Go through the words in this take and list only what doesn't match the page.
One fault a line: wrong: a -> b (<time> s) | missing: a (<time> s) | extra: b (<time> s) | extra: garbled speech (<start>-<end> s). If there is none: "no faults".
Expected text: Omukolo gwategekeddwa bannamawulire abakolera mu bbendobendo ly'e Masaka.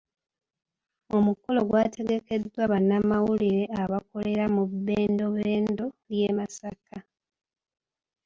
no faults